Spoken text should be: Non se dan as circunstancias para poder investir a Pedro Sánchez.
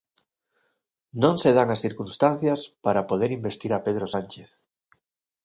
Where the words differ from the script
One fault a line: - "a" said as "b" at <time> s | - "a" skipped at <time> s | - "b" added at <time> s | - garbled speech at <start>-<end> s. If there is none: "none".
none